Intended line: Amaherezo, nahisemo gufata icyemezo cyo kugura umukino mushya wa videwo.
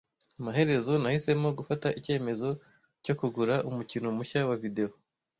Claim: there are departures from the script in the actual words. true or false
false